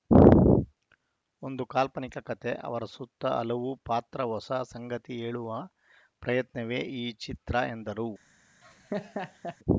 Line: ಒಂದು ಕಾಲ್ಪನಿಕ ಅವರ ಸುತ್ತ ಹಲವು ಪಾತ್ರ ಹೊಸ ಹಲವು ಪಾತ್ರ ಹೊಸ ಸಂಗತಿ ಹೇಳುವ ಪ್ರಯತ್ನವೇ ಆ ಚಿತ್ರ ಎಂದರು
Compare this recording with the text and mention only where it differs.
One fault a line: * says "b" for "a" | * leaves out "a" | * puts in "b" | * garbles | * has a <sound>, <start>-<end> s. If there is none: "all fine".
* puts in "ಕತೆ"
* leaves out "ಹಲವು ಪಾತ್ರ ಹೊಸ"
* says "ಈ" for "ಆ"
* has a laugh, 8.6-9.6 s